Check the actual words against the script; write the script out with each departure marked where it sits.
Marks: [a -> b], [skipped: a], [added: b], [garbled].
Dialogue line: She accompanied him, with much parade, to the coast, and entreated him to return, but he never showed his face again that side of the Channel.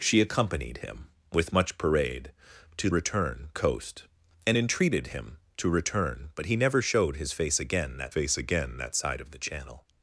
She accompanied him, with much parade, to [the -> return] coast, and entreated him to return, but he never showed his face again that [added: face again that] side of the Channel.